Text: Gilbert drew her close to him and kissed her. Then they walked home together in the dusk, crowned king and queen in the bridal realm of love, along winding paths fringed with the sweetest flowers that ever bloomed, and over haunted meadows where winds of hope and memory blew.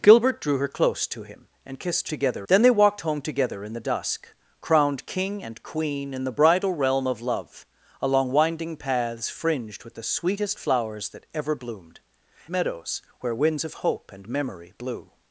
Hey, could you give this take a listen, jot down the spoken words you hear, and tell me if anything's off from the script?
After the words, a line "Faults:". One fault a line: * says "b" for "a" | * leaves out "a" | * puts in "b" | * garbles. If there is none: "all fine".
Gilbert drew her close to him and kissed together. Then they walked home together in the dusk, crowned king and queen in the bridal realm of love, along winding paths fringed with the sweetest flowers that ever bloomed, meadows where winds of hope and memory blew.
Faults:
* says "together" for "her"
* leaves out "and over haunted"